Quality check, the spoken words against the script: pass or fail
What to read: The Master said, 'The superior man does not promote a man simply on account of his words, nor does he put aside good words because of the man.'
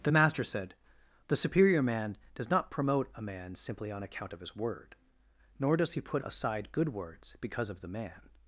fail